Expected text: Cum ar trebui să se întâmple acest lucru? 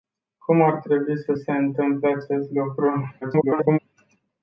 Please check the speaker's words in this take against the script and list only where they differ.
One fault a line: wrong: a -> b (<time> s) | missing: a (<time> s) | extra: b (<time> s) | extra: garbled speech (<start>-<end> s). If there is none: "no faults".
extra: garbled speech (3.2-3.8 s)